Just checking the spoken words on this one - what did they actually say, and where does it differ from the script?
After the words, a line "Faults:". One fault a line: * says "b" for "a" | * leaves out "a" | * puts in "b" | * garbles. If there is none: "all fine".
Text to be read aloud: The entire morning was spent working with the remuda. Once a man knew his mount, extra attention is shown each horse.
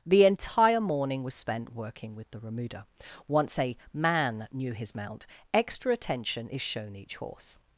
The entire morning was spent working with the remuda. Once a man knew his mount, extra attention is shown each horse.
Faults:
all fine